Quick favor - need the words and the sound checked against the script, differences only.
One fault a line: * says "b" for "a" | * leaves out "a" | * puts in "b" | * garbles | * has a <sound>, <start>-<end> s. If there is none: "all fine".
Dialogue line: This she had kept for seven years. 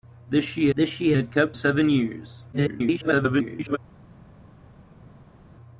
* puts in "this she"
* leaves out "for"
* garbles